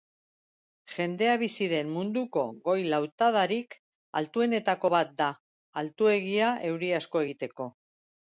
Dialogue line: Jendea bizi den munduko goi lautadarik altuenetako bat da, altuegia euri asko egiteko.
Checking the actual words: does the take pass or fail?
pass